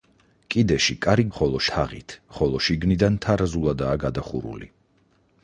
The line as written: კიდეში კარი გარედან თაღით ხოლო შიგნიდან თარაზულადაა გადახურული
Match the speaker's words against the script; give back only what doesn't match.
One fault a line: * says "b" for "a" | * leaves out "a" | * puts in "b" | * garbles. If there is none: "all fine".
* says "ხოლო" for "გარედან"